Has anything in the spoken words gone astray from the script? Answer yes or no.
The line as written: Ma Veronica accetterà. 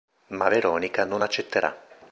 yes